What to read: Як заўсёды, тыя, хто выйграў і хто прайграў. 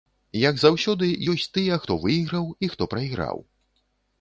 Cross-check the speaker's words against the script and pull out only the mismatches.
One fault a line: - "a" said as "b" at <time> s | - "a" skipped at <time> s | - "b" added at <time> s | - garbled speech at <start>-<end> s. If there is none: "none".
- "ёсць" added at 1.3 s